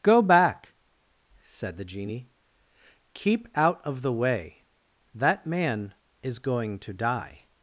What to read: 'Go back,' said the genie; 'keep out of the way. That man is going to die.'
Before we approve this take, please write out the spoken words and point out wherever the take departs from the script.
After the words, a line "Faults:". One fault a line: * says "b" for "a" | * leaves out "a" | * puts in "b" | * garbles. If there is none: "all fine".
'Go back,' said the genie; 'keep out of the way. That man is going to die.'
Faults:
all fine